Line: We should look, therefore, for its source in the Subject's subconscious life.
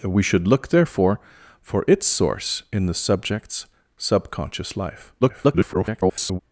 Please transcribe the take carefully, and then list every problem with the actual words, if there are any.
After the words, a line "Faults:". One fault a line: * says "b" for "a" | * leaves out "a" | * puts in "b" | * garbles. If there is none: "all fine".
We should look, therefore, for its source in the Subject's subconscious life. [garbled]
Faults:
* garbles